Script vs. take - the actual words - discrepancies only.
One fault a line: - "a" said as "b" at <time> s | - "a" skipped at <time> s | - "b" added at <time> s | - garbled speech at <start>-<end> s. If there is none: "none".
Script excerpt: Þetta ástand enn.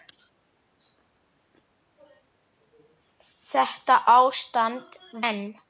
none